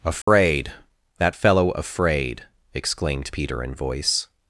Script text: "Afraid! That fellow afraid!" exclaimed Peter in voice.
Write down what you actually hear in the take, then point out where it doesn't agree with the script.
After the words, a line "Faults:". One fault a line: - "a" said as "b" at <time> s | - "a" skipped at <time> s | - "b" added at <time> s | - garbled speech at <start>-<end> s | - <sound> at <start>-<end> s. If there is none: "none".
"Afraid! That fellow afraid!" exclaimed Peter in voice.
Faults:
- dropout at 0.2-0.3 s